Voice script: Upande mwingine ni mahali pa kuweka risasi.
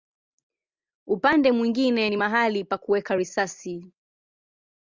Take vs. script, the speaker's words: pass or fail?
pass